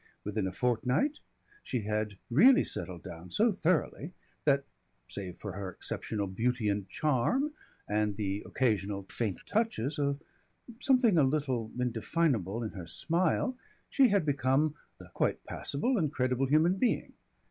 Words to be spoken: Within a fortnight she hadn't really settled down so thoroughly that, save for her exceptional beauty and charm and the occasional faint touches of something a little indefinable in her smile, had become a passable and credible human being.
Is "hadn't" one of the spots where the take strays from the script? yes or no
yes